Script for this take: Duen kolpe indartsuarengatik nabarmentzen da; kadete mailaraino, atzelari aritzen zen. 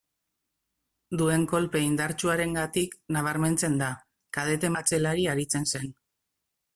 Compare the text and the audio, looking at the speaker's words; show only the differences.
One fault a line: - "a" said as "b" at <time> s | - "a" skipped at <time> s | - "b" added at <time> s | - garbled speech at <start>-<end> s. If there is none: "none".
- "mailaraino" skipped at 4.7 s